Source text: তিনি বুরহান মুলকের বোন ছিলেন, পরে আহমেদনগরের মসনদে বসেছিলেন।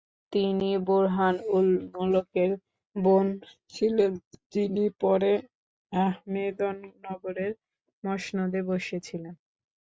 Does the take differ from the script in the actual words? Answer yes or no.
yes